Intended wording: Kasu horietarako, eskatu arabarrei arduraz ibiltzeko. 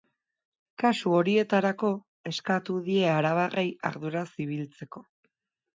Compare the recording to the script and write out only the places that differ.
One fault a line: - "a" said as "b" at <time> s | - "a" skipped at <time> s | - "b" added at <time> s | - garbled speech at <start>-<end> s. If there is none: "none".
- "die" added at 2.9 s